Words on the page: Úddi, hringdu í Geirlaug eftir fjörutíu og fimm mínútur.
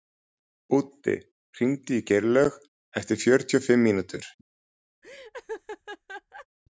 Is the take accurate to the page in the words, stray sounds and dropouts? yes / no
no